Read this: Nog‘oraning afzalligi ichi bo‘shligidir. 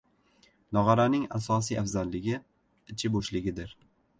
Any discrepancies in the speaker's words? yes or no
yes